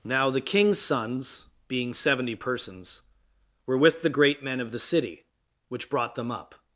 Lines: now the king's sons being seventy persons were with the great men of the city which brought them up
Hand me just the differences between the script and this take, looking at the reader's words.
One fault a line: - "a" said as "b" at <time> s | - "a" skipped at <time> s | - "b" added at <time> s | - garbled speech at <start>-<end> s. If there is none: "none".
none